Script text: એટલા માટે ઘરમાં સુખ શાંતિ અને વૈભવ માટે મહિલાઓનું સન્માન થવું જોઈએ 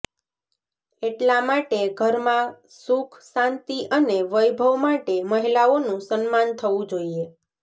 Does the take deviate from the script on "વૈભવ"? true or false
false